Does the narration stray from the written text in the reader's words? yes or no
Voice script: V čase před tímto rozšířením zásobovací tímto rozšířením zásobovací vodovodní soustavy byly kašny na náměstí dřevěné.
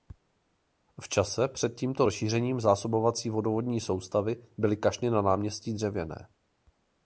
yes